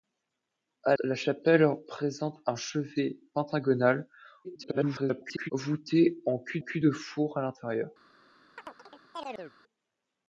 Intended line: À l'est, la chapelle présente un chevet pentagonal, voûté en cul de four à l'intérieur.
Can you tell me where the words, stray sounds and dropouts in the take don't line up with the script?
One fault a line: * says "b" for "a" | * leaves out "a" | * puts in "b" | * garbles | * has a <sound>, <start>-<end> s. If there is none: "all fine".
* leaves out "l'est"
* garbles
* puts in "cul"
* has a chirp, 8.6-9.5 s